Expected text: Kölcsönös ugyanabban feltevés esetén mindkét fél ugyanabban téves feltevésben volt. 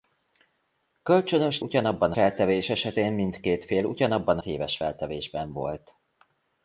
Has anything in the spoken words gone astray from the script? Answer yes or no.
no